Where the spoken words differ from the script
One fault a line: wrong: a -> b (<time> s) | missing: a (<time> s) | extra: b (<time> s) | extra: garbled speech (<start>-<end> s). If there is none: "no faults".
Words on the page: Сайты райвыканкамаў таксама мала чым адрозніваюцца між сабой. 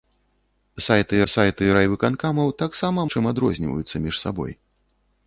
extra: сайты (1.3 s)
missing: мала (3.1 s)